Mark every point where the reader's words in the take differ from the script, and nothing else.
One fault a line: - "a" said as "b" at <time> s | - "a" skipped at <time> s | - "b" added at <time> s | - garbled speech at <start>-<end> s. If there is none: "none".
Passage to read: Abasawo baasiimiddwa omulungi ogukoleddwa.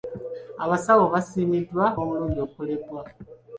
none